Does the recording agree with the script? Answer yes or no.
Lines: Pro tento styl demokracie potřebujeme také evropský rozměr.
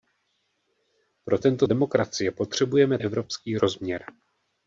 no